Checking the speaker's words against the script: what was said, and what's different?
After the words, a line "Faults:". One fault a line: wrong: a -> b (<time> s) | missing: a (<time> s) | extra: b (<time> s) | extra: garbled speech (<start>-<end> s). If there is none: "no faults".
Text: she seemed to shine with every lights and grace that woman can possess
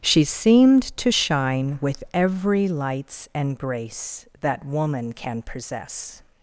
she seemed to shine with every lights and grace that woman can possess
Faults:
no faults